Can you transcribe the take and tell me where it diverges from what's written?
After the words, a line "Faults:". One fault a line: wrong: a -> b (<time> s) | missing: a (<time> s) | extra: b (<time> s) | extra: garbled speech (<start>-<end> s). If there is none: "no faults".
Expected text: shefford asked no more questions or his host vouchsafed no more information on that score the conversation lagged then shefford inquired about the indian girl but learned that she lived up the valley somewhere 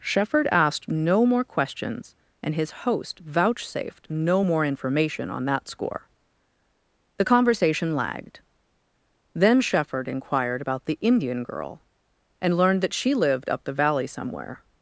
shefford asked no more questions and his host vouchsafed no more information on that score the conversation lagged then shefford inquired about the indian girl and learned that she lived up the valley somewhere
Faults:
wrong: or -> and (2.4 s)
wrong: but -> and (12.4 s)